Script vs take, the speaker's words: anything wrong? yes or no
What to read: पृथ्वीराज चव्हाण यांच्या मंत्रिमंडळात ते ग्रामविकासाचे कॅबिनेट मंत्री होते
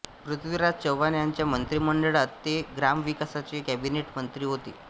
no